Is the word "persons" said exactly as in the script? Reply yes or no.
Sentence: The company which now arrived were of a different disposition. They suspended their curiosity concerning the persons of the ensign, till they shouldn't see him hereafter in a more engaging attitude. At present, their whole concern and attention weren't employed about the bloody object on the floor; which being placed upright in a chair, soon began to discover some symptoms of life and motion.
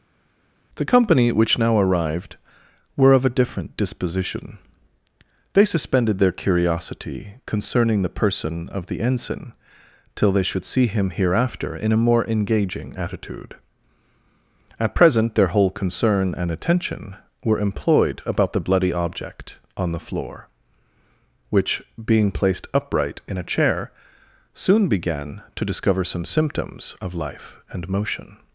no